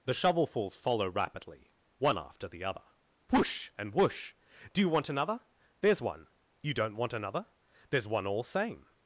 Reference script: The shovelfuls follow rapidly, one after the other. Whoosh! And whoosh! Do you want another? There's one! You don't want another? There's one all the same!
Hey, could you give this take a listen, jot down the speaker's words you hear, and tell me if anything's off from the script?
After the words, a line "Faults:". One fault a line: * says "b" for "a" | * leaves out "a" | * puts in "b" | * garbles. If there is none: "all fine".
The shovelfuls follow rapidly, one after the other. Whoosh! And whoosh! Do you want another? There's one! You don't want another? There's one all same!
Faults:
* leaves out "the"